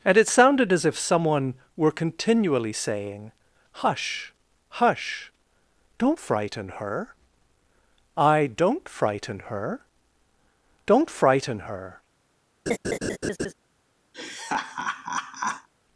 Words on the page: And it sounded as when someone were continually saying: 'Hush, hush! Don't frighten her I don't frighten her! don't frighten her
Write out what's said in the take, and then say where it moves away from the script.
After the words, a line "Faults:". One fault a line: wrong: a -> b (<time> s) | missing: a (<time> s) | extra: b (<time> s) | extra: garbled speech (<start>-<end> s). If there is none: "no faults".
And it sounded as if someone were continually saying: 'Hush, hush! Don't frighten her I don't frighten her! don't frighten her
Faults:
wrong: when -> if (0.8 s)